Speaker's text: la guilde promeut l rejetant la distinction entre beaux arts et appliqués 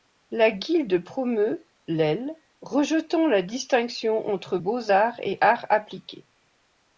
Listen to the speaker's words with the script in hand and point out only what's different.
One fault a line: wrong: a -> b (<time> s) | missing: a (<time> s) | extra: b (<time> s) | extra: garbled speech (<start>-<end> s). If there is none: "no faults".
extra: arts (5.4 s)